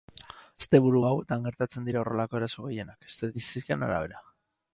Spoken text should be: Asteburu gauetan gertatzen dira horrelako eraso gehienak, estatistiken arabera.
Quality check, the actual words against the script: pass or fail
pass